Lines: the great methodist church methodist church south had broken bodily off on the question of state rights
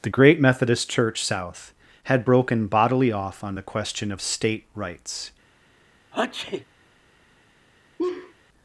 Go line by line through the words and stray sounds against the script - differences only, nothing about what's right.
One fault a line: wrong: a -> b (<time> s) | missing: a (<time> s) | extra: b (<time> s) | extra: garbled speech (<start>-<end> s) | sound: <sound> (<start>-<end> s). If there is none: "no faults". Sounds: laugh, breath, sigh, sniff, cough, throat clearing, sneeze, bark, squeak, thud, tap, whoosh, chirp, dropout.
missing: methodist church (1.2 s)
sound: sneeze (6.1-6.7 s)
sound: laugh (8.0-8.3 s)